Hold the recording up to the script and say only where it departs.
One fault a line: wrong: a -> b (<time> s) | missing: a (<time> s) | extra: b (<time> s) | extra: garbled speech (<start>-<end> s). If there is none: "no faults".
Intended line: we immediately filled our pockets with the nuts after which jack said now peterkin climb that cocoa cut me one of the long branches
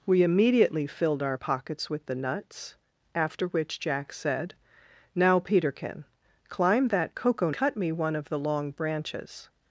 no faults